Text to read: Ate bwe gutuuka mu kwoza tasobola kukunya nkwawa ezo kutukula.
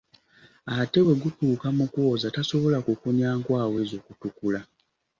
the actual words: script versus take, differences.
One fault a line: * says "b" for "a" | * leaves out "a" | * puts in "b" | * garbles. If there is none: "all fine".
all fine